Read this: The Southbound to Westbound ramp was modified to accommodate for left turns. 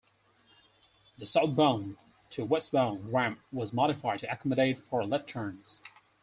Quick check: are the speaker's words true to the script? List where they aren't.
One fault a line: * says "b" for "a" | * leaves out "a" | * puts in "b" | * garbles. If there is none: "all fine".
all fine